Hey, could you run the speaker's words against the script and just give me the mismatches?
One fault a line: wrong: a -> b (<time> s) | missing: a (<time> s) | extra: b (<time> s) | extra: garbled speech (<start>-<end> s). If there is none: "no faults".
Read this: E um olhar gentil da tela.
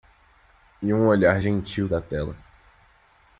no faults